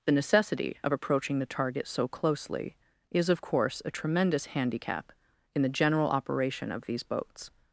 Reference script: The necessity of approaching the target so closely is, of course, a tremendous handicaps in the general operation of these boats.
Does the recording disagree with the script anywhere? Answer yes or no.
yes